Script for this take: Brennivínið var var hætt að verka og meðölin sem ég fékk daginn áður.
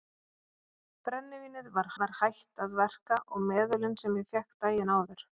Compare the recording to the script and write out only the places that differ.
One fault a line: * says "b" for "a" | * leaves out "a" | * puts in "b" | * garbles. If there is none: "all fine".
all fine